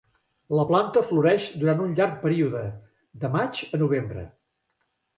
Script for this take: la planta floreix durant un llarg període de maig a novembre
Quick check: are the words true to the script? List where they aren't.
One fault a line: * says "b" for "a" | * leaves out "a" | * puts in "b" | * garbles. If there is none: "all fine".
all fine